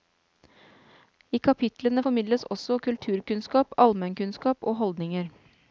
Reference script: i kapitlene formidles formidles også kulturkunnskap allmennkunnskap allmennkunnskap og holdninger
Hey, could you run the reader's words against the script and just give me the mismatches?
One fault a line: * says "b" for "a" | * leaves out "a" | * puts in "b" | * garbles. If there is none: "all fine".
* leaves out "formidles"
* leaves out "allmennkunnskap"